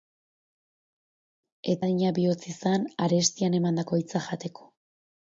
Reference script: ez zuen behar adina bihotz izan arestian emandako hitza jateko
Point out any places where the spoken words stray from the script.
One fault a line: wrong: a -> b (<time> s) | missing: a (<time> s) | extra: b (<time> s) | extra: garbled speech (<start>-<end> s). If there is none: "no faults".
missing: zuen behar (1.8 s)